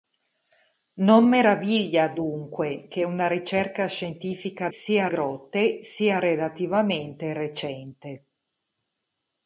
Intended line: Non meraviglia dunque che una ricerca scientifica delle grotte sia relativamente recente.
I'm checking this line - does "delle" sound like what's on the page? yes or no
no